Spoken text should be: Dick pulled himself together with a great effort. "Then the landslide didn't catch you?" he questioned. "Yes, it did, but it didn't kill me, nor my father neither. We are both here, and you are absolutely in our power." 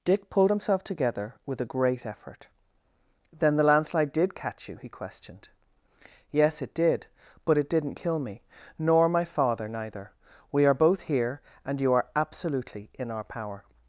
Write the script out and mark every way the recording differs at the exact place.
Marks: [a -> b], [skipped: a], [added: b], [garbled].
Dick pulled himself together with a great effort. "Then the landslide [didn't -> did] catch you?" he questioned. "Yes, it did, but it didn't kill me, nor my father neither. We are both here, and you are absolutely in our power."